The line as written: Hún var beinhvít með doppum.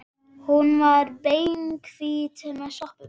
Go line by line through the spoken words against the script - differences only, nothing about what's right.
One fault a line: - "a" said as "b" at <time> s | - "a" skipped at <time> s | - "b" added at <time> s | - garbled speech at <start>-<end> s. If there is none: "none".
none